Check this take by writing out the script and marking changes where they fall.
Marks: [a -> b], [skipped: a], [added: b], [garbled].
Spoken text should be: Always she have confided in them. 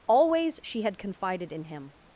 Always she [have -> had] confided in [them. -> him]